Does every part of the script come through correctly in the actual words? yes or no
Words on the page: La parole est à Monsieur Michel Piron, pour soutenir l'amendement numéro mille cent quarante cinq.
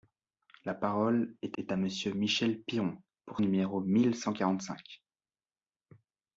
no